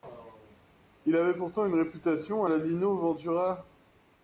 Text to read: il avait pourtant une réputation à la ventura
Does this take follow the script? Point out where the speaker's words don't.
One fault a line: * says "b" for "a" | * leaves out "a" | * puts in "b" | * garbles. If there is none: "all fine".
* puts in "lino"